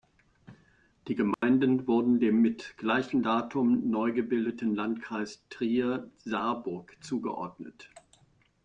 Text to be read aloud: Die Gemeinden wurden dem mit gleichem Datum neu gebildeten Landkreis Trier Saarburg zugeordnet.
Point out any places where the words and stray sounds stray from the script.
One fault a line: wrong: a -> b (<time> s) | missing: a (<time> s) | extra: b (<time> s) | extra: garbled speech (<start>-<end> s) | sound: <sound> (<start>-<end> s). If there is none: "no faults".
sound: dropout (1.3-1.4 s)